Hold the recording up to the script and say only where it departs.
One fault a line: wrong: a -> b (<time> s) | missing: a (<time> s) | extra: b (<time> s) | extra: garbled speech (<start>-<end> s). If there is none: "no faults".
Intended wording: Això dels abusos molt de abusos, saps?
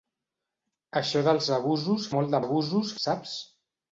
no faults